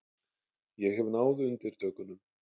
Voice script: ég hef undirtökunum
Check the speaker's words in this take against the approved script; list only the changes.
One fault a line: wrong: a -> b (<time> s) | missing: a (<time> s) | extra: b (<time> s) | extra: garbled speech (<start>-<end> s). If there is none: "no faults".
extra: náð (1.2 s)